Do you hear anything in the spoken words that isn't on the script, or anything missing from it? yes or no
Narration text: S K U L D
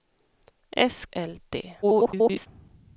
yes